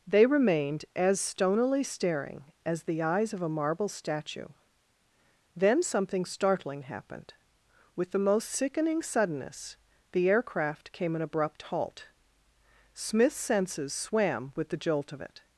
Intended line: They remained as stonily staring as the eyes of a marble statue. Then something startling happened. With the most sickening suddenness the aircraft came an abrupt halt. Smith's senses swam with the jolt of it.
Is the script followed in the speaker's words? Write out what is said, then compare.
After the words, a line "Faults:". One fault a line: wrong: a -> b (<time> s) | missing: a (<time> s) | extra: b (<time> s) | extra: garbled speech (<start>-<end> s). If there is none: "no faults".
They remained as stonily staring as the eyes of a marble statue. Then something startling happened. With the most sickening suddenness the aircraft came an abrupt halt. Smith's senses swam with the jolt of it.
Faults:
no faults